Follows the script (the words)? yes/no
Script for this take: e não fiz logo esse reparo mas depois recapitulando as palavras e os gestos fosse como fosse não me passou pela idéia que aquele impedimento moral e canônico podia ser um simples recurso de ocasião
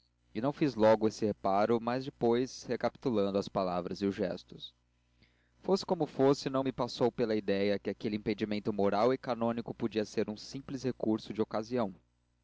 yes